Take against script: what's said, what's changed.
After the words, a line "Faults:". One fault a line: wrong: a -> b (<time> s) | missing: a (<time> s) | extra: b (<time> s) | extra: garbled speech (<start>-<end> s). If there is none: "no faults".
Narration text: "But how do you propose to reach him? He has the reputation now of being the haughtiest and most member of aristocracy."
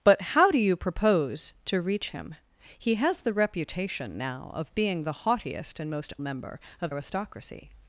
"But how do you propose to reach him? He has the reputation now of being the haughtiest and most member of aristocracy."
Faults:
no faults